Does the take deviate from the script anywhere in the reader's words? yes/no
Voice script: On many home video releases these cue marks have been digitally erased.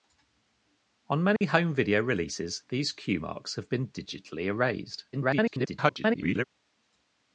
yes